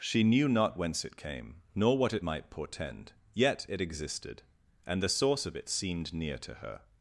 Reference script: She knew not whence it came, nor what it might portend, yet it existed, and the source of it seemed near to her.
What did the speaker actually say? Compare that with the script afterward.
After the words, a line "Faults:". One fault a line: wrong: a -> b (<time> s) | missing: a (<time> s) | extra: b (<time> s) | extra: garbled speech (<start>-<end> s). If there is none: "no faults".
She knew not whence it came, nor what it might portend, yet it existed, and the source of it seemed near to her.
Faults:
no faults